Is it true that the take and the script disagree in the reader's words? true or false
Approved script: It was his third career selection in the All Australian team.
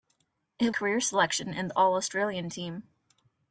true